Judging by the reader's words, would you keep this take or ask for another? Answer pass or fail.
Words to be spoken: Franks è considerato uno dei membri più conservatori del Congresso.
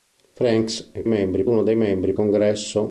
fail